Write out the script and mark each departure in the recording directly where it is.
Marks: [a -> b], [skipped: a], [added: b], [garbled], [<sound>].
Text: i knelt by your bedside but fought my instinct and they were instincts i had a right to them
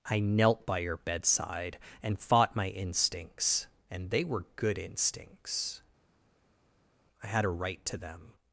i knelt by your bedside [but -> and] fought my [instinct -> instincts] and they were [added: good] instincts i had a right to them